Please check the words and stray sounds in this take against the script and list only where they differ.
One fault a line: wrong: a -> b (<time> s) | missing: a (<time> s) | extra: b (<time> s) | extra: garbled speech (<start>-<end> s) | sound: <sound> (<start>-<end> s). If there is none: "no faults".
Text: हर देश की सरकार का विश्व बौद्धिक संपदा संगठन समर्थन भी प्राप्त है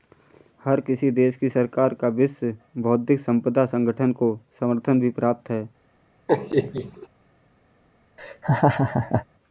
extra: किसी (0.8 s)
extra: को (4.1 s)
sound: laugh (6.3-7.1 s)
sound: laugh (8.2-9.2 s)